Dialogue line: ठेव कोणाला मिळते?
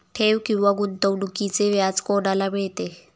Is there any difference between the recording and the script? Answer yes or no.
yes